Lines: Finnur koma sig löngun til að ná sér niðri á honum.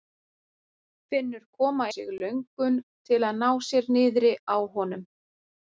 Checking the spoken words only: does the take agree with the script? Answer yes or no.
yes